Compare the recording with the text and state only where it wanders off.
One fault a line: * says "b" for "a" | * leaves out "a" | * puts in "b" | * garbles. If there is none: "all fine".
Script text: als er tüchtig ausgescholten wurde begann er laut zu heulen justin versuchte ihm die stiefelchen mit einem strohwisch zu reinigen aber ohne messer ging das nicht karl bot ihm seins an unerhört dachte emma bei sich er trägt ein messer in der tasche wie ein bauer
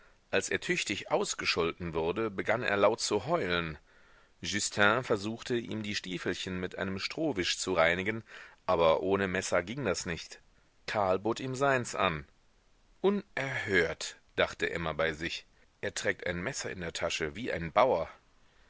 all fine